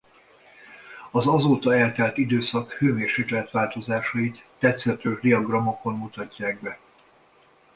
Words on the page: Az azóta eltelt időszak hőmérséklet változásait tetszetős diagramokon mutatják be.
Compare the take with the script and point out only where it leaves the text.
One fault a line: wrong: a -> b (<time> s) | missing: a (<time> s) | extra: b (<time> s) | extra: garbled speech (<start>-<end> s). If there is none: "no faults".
no faults